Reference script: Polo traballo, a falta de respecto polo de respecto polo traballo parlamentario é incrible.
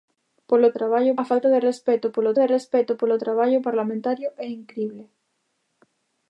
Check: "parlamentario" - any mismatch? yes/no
no